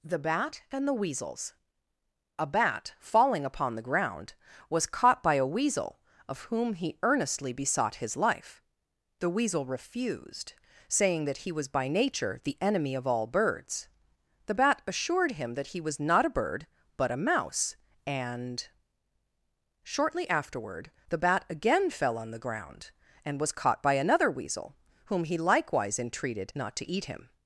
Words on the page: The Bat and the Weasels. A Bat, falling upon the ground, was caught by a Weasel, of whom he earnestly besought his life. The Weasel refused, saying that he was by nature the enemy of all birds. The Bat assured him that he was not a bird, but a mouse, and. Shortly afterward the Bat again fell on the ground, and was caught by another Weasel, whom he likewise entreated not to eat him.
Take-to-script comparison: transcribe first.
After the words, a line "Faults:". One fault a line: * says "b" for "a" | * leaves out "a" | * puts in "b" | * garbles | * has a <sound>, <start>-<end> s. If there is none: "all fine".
The Bat and the Weasels. A Bat, falling upon the ground, was caught by a Weasel, of whom he earnestly besought his life. The Weasel refused, saying that he was by nature the enemy of all birds. The Bat assured him that he was not a bird, but a mouse, and. Shortly afterward the Bat again fell on the ground, and was caught by another Weasel, whom he likewise entreated not to eat him.
Faults:
all fine